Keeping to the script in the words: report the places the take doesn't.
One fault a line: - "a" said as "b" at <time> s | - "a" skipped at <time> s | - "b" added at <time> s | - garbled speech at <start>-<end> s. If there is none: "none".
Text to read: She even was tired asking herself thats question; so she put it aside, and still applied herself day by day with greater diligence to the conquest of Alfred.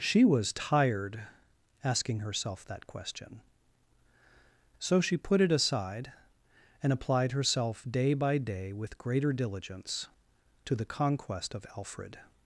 - "even" skipped at 0.2 s
- "thats" said as "that" at 2.6 s
- "still" skipped at 6.9 s